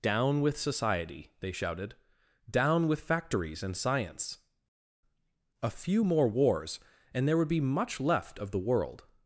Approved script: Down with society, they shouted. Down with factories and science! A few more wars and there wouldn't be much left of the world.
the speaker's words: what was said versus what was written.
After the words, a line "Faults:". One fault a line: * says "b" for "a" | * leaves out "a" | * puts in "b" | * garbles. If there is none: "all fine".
Down with society, they shouted. Down with factories and science! A few more wars and there would be much left of the world.
Faults:
* says "would" for "wouldn't"